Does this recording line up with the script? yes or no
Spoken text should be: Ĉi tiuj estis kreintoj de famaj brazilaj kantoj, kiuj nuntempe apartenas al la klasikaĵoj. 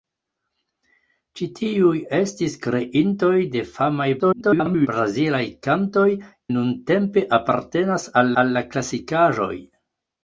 no